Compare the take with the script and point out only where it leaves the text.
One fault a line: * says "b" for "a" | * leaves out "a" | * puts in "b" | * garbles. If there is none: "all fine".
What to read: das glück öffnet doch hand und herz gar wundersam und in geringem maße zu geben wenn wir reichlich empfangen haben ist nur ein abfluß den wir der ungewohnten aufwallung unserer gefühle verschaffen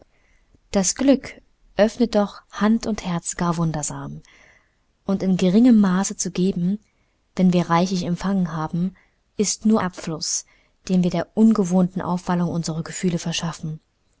* leaves out "ein"